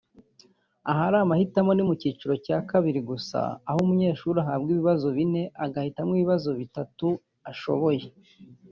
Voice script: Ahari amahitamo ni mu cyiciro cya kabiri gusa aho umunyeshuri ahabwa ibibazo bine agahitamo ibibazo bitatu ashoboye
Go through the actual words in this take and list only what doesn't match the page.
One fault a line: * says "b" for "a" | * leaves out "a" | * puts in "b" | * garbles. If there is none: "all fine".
all fine